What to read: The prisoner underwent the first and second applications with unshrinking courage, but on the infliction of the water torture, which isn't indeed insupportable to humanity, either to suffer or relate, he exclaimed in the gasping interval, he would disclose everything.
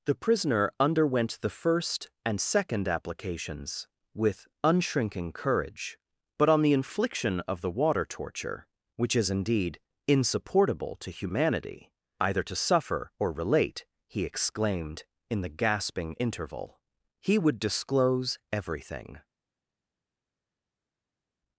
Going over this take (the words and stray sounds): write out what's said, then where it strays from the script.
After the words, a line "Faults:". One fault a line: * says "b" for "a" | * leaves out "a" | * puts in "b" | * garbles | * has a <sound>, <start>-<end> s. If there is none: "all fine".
The prisoner underwent the first and second applications with unshrinking courage, but on the infliction of the water torture, which is indeed insupportable to humanity, either to suffer or relate, he exclaimed in the gasping interval, he would disclose everything.
Faults:
* says "is" for "isn't"